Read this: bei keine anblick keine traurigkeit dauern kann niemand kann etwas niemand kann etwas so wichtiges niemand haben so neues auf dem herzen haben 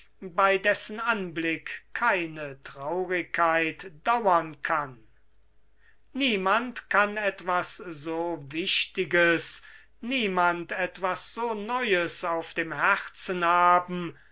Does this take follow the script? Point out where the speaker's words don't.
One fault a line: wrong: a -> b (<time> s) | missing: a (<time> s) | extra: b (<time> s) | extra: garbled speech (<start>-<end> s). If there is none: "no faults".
wrong: keine -> dessen (0.6 s)
missing: niemand kann etwas (7.8 s)
wrong: haben -> etwas (10.7 s)